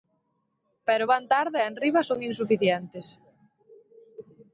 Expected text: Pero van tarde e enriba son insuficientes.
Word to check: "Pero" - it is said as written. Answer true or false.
true